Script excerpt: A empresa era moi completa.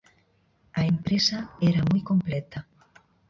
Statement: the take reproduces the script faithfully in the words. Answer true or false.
true